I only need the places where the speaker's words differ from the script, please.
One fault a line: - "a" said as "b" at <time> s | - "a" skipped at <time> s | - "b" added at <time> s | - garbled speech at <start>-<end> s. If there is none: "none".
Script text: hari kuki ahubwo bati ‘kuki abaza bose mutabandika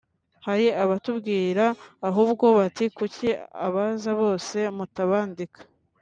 - "kuki" said as "abatubwira" at 0.8 s